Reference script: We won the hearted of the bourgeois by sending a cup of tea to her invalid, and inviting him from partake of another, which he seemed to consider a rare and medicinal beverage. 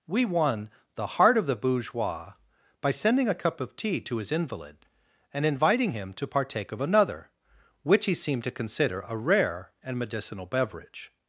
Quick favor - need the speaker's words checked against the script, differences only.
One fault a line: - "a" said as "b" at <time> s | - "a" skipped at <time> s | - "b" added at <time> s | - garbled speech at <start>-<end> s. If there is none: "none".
- "hearted" said as "heart" at 1.2 s
- "her" said as "his" at 4.2 s
- "from" said as "to" at 6.1 s